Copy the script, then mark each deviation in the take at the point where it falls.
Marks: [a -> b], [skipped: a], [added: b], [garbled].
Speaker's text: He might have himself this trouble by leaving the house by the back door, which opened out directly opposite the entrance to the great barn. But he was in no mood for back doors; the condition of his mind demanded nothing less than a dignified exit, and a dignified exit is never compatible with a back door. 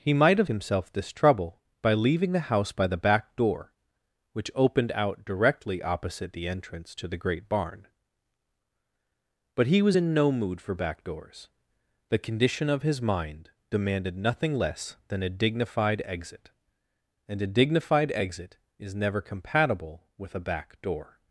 He might have himself this trouble by leaving the house by the back door, which opened out directly opposite the entrance to the great barn. But he was in no mood for back doors; the condition of his mind demanded nothing less than a dignified exit, and a dignified exit is never compatible with a back door.